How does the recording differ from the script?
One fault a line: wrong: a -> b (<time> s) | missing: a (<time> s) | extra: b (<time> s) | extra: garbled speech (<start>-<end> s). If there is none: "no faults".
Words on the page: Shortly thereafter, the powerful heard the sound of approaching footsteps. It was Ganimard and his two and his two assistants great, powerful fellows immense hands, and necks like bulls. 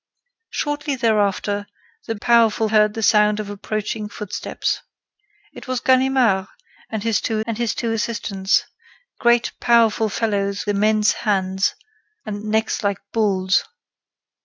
no faults